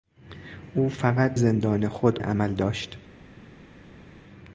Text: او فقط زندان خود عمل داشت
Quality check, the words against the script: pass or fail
pass